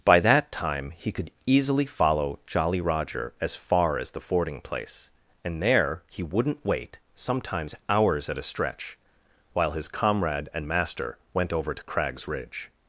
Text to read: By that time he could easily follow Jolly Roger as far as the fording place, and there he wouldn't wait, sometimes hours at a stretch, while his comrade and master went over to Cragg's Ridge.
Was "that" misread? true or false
false